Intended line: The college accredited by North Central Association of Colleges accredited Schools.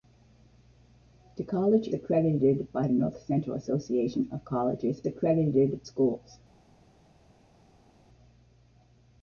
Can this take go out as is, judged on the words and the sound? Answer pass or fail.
pass